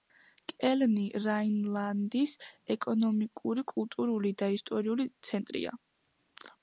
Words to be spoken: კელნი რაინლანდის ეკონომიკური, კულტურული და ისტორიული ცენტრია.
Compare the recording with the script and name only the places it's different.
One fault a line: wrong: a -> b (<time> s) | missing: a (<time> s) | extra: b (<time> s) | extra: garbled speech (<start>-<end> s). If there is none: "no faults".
no faults